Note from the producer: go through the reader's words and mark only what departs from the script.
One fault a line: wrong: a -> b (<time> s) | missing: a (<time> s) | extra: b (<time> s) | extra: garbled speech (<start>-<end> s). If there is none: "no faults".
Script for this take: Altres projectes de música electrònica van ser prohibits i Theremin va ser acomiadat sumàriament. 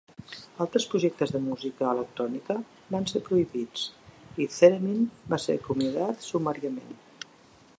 no faults